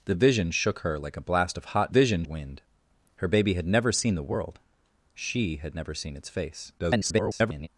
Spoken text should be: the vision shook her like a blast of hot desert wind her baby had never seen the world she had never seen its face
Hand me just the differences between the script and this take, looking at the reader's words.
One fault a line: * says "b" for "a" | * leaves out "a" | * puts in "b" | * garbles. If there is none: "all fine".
* says "vision" for "desert"
* garbles